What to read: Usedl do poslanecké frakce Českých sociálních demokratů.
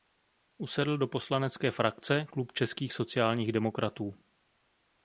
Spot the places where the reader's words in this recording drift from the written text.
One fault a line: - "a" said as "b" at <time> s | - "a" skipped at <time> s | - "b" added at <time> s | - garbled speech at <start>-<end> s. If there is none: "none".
- "Klub" added at 2.3 s